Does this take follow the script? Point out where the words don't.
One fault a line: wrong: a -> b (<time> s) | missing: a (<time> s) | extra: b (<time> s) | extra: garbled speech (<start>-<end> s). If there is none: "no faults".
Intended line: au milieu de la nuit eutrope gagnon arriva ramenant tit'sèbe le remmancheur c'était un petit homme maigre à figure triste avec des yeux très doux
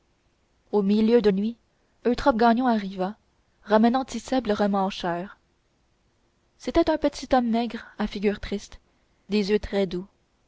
missing: la (1.3 s)
missing: avec (8.8 s)